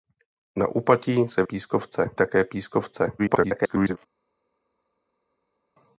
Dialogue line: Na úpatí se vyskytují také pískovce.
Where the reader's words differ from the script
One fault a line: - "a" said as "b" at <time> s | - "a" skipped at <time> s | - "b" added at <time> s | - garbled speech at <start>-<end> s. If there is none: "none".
- "vyskytují" said as "pískovce" at 1.4 s
- garbled speech at 3.2-4.0 s